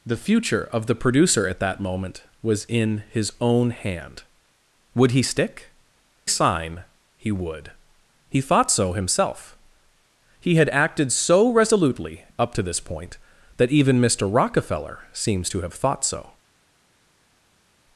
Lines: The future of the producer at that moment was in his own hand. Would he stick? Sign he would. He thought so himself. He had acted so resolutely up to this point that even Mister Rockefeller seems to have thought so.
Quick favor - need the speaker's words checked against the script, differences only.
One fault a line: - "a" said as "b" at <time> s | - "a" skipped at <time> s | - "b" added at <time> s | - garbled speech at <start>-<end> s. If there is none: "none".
none